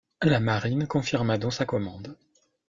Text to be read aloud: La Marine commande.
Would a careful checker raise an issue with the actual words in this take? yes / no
yes